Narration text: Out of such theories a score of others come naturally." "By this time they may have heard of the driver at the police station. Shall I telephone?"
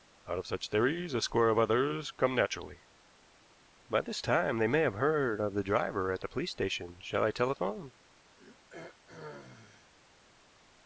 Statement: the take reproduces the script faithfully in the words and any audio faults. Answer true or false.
false